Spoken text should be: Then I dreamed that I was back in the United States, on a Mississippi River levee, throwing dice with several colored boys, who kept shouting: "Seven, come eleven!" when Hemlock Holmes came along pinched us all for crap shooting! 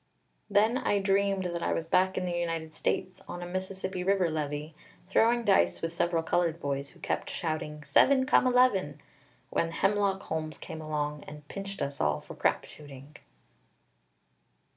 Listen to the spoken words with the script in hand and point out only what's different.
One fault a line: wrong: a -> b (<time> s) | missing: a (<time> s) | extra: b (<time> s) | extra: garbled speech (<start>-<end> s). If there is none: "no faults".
extra: and (11.3 s)